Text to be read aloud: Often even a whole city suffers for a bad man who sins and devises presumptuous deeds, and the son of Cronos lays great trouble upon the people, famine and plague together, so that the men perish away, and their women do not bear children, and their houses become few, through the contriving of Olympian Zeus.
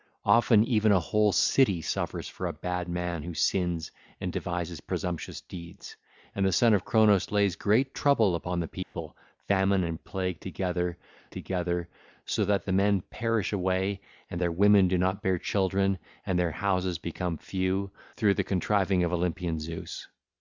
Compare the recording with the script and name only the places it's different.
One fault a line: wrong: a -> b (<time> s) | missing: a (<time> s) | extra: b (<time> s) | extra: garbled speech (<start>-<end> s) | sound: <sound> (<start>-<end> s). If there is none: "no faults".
sound: dropout (8.8-8.9 s)
extra: together (11.3 s)